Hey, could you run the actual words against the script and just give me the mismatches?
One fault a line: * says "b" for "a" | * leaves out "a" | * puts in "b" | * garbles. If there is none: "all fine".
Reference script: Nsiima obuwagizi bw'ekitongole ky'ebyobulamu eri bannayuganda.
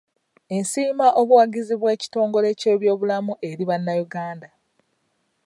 all fine